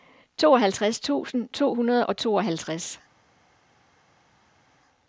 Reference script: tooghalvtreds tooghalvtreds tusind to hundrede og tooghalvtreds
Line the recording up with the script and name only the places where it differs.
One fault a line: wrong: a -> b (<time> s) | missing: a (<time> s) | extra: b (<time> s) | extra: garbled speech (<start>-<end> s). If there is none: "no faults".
missing: tooghalvtreds (1.0 s)